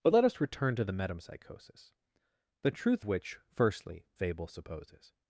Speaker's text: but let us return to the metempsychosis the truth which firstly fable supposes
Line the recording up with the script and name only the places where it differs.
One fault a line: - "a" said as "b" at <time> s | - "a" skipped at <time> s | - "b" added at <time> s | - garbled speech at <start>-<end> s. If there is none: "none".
none